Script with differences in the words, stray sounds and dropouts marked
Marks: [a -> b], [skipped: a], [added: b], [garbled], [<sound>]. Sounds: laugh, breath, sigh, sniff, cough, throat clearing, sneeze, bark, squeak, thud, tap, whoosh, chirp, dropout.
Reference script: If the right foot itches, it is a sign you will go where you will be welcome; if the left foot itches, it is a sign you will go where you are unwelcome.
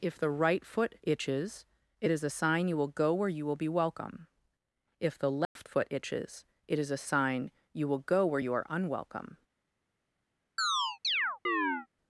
If the right foot itches, it is a sign you will go where you will be welcome; if the left [dropout] foot itches, it is a sign you will go where you are unwelcome. [chirp]